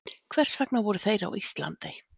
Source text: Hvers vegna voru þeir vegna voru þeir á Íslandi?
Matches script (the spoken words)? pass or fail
fail